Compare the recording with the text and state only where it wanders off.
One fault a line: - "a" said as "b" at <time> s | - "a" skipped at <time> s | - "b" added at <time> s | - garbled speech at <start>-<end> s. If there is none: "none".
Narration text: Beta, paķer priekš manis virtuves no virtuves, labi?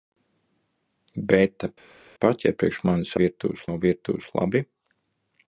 none